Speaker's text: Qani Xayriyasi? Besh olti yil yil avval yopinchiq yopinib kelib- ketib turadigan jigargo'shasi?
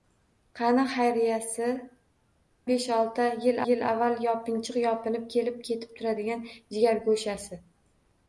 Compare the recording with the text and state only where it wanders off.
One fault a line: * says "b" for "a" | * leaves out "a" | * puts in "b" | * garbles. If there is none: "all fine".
all fine